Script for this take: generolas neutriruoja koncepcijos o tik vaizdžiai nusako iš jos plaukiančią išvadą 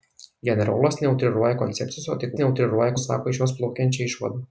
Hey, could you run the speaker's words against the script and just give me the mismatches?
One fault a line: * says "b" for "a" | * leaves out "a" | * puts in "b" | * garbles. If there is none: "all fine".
* says "neutriruoja" for "vaizdžiai"